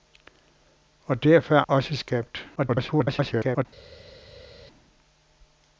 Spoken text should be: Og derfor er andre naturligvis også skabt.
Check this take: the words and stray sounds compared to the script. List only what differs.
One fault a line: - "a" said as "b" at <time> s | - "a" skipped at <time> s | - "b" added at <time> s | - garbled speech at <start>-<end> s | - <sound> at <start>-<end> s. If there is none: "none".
- "andre naturligvis" skipped at 1.6 s
- garbled speech at 2.6-3.7 s